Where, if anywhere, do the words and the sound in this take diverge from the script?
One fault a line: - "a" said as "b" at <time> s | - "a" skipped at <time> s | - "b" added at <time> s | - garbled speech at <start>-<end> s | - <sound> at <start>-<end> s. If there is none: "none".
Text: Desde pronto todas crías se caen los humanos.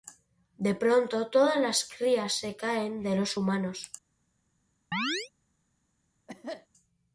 - "Desde" said as "De" at 0.6 s
- "las" added at 1.6 s
- "de" added at 3.0 s
- chirp at 4.9-5.3 s
- cough at 6.3-6.7 s